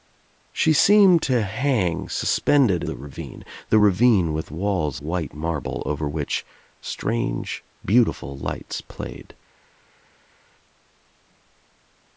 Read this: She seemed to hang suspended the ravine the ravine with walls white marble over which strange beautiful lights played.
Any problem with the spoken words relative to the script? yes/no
no